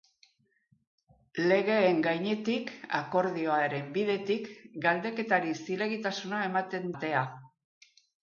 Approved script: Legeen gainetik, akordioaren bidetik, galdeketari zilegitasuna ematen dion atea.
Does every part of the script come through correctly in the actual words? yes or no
no